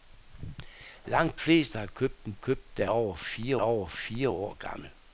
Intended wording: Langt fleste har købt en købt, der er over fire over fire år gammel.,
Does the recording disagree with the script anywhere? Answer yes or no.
no